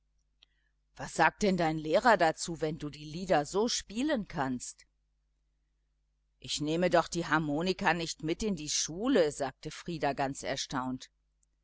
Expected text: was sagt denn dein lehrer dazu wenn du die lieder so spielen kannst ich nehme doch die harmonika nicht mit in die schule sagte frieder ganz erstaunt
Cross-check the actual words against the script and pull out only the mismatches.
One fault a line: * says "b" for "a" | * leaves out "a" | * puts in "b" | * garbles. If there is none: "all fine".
all fine